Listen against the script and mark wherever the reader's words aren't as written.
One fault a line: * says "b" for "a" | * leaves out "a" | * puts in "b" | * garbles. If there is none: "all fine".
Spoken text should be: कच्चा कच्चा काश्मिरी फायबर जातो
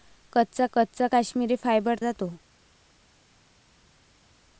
all fine